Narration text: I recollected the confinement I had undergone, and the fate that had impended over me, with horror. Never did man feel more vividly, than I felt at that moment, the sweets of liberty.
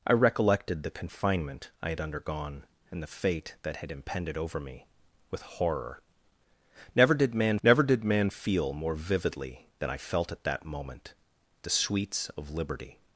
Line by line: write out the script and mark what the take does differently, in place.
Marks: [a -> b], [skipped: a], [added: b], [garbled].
I recollected the confinement I had undergone, and the fate that had impended over me, with horror. Never did man [added: never did man] feel more vividly, than I felt at that moment, the sweets of liberty.